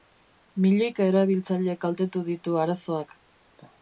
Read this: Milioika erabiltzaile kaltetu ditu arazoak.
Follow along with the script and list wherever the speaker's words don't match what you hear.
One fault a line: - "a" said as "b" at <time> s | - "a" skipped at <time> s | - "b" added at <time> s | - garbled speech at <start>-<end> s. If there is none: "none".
none